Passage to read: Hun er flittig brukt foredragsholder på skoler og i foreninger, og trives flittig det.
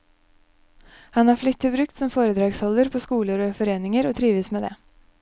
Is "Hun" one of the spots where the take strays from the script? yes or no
yes